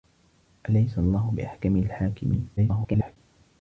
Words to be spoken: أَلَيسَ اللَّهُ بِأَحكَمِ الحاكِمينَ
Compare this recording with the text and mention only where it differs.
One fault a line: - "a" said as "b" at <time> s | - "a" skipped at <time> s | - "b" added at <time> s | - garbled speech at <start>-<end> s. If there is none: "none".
- garbled speech at 2.6-3.2 s